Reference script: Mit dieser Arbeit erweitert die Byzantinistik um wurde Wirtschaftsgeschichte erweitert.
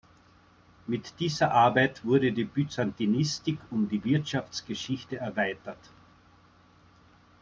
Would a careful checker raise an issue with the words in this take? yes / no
yes